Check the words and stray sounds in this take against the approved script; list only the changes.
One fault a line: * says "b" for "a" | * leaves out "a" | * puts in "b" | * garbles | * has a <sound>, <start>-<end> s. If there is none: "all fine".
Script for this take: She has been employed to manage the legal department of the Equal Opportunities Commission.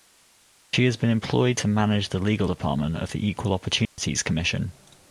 * has a dropout, 3.9-4.0 s